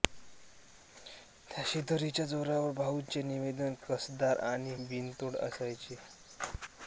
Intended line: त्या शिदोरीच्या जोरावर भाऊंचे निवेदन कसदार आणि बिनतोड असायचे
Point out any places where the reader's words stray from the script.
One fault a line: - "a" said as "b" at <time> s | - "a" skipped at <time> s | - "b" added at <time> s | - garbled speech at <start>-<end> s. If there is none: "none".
none